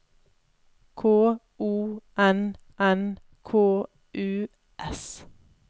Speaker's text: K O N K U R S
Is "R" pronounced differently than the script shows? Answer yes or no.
yes